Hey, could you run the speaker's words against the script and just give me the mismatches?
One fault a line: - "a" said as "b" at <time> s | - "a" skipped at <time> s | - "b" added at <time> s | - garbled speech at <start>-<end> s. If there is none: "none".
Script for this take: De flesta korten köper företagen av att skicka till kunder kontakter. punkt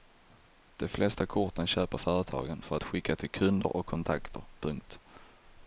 - "av" said as "för" at 2.6 s
- "och" added at 3.8 s